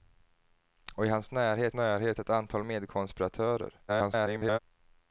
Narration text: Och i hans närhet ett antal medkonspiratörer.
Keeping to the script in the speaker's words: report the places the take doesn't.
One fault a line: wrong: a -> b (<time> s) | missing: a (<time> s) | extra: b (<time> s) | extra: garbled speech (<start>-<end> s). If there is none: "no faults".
extra: närhet (1.7 s)
extra: garbled speech (3.9-4.6 s)